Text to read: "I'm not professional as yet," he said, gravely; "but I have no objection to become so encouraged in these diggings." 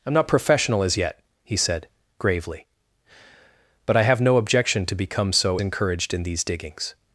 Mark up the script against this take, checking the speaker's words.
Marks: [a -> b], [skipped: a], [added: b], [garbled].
"I'm not professional as yet," he said, gravely; "but I have no objection to become so encouraged in these diggings."